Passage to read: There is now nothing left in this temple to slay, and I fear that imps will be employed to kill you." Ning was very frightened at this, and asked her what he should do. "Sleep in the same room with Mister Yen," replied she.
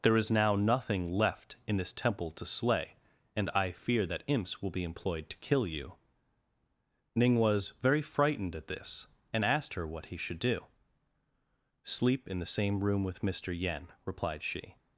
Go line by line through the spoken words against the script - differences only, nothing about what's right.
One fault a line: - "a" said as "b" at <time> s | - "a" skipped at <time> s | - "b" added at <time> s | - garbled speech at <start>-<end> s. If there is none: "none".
none